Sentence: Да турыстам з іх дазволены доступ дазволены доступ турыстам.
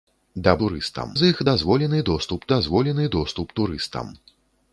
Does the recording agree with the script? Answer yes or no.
yes